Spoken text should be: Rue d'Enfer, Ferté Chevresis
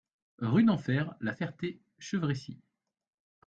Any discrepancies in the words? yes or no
yes